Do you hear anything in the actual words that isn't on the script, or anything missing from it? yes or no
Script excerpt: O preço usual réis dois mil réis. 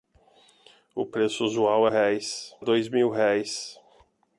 no